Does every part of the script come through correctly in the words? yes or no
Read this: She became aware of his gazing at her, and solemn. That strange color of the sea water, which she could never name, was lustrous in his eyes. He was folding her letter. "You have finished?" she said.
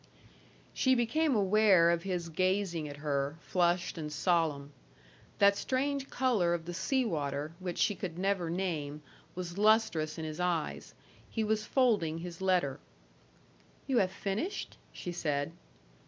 no